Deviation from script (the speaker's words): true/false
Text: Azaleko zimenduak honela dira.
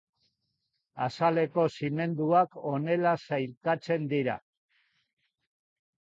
true